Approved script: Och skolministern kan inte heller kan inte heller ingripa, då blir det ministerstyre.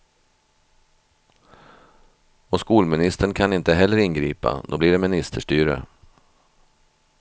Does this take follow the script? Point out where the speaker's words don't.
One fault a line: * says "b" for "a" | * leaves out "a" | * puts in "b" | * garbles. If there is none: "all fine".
* leaves out "kan inte heller"